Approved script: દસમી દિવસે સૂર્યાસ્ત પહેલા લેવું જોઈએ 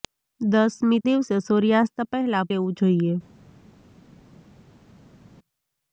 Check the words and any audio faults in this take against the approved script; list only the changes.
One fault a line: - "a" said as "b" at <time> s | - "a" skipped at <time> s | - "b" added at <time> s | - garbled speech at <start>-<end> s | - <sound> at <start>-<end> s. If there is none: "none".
none